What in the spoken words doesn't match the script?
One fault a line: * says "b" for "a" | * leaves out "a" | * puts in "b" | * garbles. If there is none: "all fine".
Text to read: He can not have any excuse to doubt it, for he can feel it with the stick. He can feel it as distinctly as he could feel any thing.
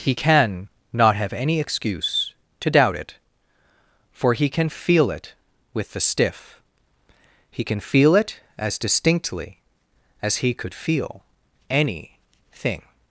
* says "stiff" for "stick"